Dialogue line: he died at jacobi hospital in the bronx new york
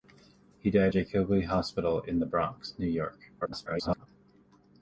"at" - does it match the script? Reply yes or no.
no